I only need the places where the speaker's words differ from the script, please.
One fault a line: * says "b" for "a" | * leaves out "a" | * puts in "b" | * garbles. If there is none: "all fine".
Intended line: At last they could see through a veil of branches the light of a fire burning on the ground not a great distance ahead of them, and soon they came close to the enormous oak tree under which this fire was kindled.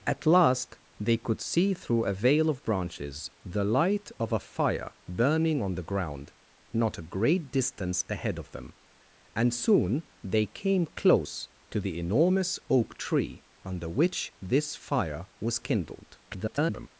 * garbles